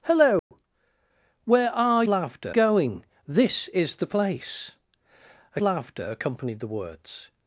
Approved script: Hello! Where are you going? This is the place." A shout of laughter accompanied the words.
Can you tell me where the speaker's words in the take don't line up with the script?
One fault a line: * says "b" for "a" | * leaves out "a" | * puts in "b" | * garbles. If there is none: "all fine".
* says "laughter" for "you"
* leaves out "shout of"